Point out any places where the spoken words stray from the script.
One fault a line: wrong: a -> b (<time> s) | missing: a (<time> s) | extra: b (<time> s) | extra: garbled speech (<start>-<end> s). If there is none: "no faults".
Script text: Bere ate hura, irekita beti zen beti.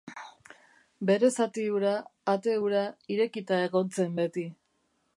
extra: zati hura (1.4 s)
wrong: beti -> egon (3.7 s)